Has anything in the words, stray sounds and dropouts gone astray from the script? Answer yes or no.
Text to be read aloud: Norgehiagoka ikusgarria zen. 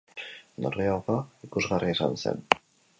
yes